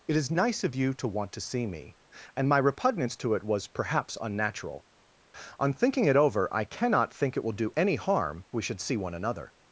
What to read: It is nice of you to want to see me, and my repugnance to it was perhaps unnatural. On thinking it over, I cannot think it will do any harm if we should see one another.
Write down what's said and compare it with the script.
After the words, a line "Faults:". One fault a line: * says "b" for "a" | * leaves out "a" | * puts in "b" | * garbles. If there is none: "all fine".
It is nice of you to want to see me, and my repugnance to it was perhaps unnatural. On thinking it over, I cannot think it will do any harm we should see one another.
Faults:
* leaves out "if"